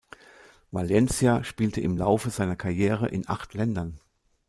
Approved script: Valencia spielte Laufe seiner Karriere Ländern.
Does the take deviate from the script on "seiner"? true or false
false